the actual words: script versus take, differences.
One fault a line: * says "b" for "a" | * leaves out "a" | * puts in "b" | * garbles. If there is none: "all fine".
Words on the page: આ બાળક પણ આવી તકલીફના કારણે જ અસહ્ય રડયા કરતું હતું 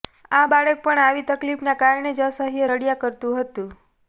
all fine